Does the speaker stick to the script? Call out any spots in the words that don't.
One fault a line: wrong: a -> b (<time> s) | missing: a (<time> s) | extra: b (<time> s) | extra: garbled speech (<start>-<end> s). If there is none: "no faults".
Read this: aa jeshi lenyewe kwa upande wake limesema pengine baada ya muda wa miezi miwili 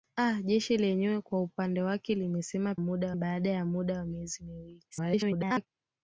wrong: pengine -> muda (2.8 s)
extra: garbled speech (4.9-5.7 s)